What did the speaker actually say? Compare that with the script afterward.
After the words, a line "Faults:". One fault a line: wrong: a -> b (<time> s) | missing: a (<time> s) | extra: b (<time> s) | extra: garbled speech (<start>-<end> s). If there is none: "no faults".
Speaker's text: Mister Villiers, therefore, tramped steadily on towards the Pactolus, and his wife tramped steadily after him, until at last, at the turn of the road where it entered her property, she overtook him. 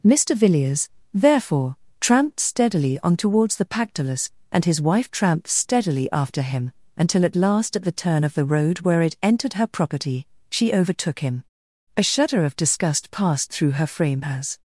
Mister Villiers, therefore, tramped steadily on towards the Pactolus, and his wife tramped steadily after him, until at last, at the turn of the road where it entered her property, she overtook him. A shudder of disgust passed through her frame as
Faults:
extra: A shudder of disgust passed through her frame as (12.0 s)